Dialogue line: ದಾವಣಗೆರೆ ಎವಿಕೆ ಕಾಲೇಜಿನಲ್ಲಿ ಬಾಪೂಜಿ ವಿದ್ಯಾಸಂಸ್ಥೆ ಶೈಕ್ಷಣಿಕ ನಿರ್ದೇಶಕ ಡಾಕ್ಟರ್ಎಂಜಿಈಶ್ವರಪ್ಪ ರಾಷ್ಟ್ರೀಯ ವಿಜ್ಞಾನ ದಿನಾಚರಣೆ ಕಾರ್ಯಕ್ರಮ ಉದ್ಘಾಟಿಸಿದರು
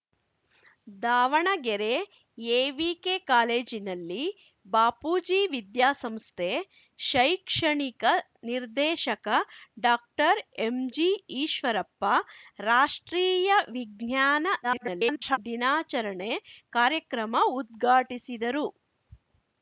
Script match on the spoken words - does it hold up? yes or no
no